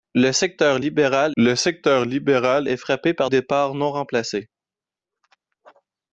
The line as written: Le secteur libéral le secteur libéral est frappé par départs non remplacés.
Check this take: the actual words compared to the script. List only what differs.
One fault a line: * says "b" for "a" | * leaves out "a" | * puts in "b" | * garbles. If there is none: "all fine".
all fine